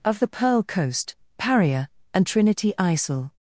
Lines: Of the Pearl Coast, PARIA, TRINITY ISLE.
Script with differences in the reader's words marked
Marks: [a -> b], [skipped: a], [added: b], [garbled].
Of the Pearl Coast, PARIA, [added: and] TRINITY ISLE.